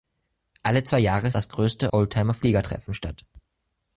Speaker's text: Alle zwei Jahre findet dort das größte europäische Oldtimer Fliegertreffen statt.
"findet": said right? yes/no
no